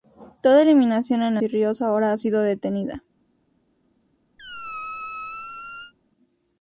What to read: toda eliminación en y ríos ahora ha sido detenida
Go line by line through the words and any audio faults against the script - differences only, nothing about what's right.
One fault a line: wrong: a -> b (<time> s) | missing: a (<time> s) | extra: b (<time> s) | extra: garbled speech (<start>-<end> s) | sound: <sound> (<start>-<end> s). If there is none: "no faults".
sound: squeak (4.4-5.9 s)